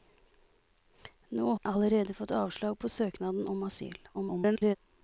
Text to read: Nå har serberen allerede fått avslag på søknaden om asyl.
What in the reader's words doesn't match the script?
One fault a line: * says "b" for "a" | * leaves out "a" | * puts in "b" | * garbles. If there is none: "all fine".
* leaves out "har serberen"
* garbles